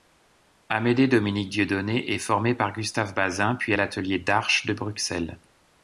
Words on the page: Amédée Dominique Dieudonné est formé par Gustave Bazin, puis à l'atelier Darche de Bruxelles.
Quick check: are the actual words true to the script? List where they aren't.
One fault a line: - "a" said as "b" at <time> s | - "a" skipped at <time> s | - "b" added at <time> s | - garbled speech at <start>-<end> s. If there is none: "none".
none